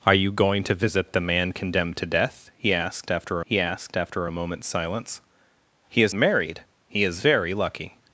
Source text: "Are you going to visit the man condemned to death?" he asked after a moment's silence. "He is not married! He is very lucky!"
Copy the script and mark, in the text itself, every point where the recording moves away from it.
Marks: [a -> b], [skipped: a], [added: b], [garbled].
"Are you going to visit the man condemned to death?" he asked after [added: he asked after] a moment's silence. "He is [skipped: not] married! He is very lucky!"